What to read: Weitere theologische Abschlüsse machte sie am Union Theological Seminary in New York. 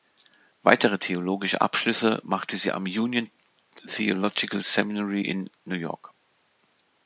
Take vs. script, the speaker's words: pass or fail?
pass